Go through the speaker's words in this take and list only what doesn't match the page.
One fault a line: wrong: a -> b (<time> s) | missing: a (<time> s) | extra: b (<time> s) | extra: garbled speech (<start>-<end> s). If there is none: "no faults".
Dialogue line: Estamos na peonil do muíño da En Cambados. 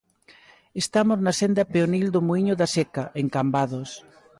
extra: senda (1.4 s)
extra: Seca (2.7 s)